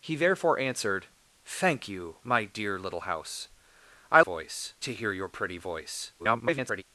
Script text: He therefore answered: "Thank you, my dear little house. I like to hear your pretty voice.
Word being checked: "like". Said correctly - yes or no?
no